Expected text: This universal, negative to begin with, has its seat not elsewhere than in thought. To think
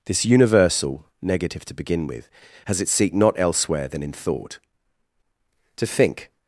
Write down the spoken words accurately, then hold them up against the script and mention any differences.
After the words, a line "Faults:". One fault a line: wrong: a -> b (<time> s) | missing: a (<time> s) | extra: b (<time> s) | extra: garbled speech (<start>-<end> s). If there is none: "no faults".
This universal, negative to begin with, has its seat not elsewhere than in thought. To think
Faults:
no faults